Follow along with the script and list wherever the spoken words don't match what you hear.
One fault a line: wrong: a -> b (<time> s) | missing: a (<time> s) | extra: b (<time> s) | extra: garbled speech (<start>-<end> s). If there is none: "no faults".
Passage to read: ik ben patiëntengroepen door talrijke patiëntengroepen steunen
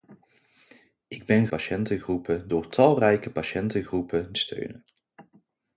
no faults